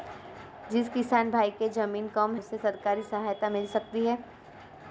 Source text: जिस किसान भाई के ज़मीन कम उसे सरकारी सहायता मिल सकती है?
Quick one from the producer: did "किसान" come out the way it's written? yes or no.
yes